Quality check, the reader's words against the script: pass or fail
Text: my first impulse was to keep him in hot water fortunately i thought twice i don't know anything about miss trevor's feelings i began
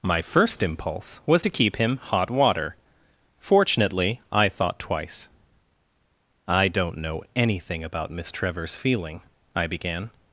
fail